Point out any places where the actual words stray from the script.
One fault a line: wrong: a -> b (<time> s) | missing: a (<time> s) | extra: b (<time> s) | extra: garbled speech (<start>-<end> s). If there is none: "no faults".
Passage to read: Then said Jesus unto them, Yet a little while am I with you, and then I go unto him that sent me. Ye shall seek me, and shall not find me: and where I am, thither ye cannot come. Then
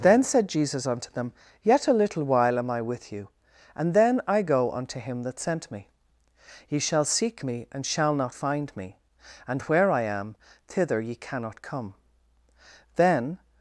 no faults